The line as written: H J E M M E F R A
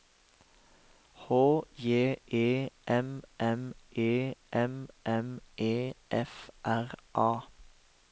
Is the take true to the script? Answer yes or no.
no